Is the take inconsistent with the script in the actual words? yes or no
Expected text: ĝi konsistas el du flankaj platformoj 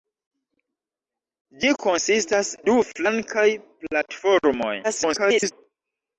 yes